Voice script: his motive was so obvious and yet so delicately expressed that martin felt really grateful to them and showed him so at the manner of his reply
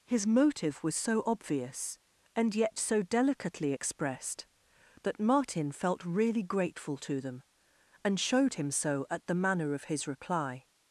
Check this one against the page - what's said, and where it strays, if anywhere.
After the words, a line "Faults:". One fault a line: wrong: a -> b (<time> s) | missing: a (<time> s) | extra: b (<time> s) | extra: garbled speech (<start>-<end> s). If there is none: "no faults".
his motive was so obvious and yet so delicately expressed that martin felt really grateful to them and showed him so at the manner of his reply
Faults:
no faults